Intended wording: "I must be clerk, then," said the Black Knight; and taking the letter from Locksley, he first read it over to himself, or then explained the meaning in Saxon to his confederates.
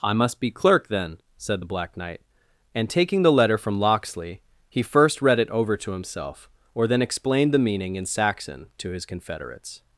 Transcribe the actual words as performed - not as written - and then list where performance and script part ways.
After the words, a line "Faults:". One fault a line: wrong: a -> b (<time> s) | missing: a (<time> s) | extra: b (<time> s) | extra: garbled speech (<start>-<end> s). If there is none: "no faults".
"I must be clerk, then," said the Black Knight; and taking the letter from Locksley, he first read it over to himself, or then explained the meaning in Saxon to his confederates.
Faults:
no faults